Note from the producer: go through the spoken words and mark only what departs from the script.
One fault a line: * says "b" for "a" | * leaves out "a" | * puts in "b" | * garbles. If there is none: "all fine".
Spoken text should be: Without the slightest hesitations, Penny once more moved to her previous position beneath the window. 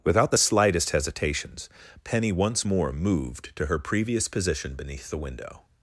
all fine